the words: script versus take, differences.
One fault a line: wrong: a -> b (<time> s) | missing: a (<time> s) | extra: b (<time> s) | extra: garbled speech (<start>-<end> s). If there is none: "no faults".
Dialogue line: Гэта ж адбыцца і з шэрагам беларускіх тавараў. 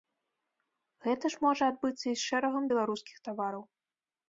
extra: можа (1.5 s)